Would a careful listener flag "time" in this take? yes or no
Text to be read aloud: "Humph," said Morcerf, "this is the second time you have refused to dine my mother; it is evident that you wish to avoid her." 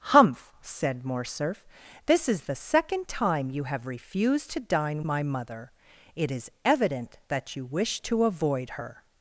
no